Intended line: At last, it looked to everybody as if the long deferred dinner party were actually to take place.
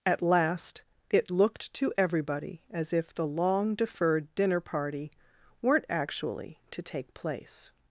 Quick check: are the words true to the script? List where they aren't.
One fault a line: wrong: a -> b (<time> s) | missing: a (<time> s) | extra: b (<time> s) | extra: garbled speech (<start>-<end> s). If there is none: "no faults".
wrong: were -> weren't (5.6 s)